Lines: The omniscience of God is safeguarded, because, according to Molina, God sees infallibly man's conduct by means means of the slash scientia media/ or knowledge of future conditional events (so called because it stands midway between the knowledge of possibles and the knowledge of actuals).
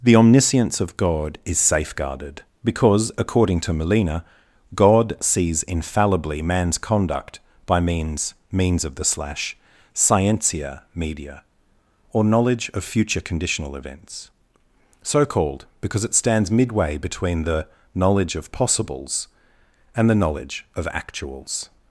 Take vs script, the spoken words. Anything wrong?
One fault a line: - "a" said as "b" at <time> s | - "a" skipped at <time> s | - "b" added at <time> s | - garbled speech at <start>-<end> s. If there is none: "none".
none